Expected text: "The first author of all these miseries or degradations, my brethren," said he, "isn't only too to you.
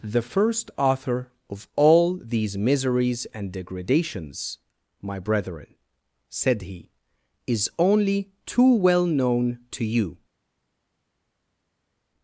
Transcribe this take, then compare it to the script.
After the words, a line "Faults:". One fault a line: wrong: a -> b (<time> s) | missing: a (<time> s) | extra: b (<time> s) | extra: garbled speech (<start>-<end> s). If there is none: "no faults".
"The first author of all these miseries and degradations, my brethren," said he, "is only too well known to you.
Faults:
wrong: or -> and (3.3 s)
wrong: isn't -> is (7.5 s)
extra: well known (8.8 s)